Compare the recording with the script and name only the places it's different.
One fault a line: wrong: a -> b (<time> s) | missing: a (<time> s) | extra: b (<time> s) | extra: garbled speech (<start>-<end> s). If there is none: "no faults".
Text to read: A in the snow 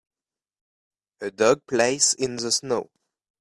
extra: dog plays (1.3 s)